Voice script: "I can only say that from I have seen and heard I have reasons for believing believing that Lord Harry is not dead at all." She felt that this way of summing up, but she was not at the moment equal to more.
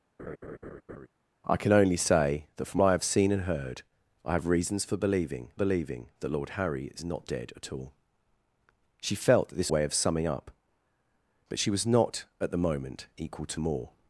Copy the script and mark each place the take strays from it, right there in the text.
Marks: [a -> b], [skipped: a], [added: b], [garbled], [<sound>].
[laugh] "I can only say that from I have seen and heard I have reasons for believing believing that Lord Harry is not dead at all." She felt that this way of summing up, but she was not at the moment equal to more.